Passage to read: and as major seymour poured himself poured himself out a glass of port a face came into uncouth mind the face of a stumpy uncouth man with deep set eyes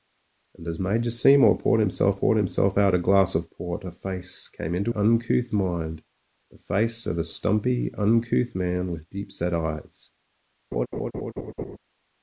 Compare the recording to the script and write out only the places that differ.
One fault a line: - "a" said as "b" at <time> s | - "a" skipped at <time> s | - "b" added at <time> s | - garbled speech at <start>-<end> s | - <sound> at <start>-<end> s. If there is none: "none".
- laugh at 10.7-11.8 s